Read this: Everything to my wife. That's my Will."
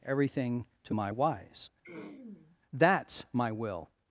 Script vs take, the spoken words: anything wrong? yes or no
yes